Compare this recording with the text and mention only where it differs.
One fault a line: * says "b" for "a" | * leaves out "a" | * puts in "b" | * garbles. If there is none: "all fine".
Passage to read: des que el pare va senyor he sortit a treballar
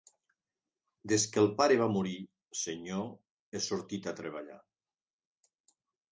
* puts in "morir"